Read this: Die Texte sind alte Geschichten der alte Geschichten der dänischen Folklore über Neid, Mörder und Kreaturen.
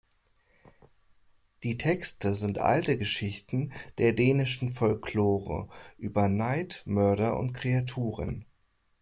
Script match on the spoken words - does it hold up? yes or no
no